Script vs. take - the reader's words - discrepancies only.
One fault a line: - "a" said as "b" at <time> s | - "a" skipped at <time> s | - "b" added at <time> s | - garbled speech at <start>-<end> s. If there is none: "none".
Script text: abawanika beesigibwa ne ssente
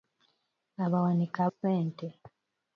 - "beesigibwa ne" skipped at 1.4 s